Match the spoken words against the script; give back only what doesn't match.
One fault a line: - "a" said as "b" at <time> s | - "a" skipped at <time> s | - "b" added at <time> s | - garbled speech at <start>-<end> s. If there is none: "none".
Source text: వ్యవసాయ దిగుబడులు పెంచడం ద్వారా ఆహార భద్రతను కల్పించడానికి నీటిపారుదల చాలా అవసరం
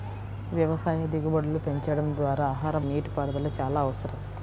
- "భద్రతను కల్పించడానికి" skipped at 2.8 s